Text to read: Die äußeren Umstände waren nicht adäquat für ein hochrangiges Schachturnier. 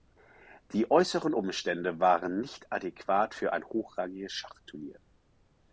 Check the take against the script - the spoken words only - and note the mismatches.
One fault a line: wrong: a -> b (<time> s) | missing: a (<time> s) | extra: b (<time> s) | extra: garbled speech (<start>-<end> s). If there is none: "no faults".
no faults